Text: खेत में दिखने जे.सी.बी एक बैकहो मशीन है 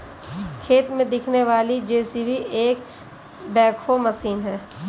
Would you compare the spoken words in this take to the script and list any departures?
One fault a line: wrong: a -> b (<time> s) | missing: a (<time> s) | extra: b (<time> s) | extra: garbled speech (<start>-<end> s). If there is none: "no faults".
extra: वाली (1.4 s)